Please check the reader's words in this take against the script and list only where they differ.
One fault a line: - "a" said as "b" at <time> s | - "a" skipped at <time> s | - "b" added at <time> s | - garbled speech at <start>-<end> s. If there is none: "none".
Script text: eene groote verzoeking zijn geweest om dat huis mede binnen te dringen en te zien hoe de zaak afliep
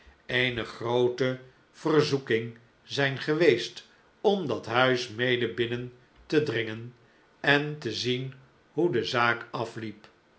none